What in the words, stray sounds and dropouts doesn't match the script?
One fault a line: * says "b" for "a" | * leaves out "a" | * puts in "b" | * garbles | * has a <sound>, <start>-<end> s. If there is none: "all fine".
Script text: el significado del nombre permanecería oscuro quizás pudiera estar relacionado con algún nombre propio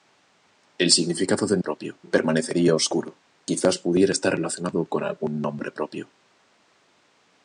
* says "propio" for "nombre"